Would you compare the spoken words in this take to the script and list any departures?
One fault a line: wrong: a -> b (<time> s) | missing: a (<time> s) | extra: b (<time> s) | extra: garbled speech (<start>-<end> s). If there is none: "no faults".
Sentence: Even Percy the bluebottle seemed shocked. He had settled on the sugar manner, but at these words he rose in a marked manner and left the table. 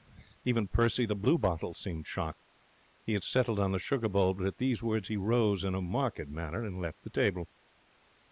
wrong: manner -> bowl (4.1 s)